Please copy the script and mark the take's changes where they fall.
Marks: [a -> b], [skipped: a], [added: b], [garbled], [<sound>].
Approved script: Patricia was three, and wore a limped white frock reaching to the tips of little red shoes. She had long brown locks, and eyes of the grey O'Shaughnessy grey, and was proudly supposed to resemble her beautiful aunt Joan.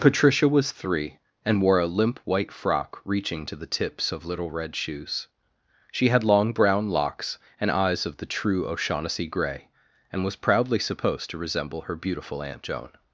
Patricia was three, and wore a [limped -> limp] white frock reaching to the tips of little red shoes. She had long brown locks, and eyes of the [grey -> true] O'Shaughnessy grey, and was proudly supposed to resemble her beautiful aunt Joan.